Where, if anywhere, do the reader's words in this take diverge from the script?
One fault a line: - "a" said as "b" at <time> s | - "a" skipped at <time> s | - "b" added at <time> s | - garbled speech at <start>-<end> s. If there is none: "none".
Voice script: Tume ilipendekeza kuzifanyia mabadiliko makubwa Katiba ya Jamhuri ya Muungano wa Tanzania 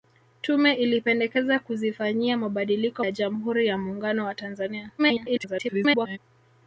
- "makubwa Katiba" skipped at 3.0 s
- garbled speech at 5.0-6.2 s